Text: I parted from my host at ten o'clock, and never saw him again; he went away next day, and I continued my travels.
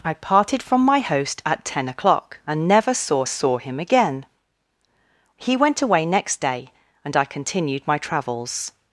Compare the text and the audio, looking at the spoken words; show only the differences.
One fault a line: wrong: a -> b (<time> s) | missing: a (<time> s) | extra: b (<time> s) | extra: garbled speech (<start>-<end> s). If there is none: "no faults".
extra: saw (3.2 s)